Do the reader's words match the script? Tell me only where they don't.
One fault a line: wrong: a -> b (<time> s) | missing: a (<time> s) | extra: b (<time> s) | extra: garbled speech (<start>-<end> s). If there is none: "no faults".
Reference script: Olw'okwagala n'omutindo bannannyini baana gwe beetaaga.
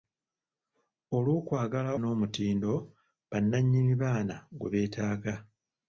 no faults